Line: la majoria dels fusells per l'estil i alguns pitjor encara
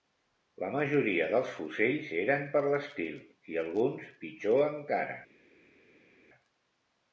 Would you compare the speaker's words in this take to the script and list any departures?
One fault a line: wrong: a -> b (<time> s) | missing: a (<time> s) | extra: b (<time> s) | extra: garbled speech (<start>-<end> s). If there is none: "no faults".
extra: eren (2.2 s)